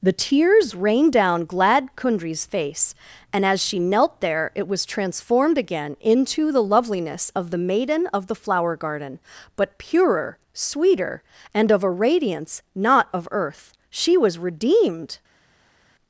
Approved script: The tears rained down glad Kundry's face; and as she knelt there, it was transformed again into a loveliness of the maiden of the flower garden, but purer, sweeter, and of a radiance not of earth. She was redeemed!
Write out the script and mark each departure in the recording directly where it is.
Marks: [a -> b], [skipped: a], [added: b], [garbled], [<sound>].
The tears rained down glad Kundry's face; and as she knelt there, it was transformed again into [a -> the] loveliness of the maiden of the flower garden, but purer, sweeter, and of a radiance not of earth. She was redeemed!